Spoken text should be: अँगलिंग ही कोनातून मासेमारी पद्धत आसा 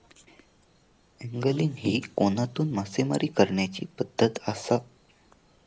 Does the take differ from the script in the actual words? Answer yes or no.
yes